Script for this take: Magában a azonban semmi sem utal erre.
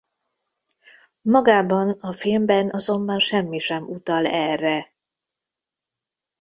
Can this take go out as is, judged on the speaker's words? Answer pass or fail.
fail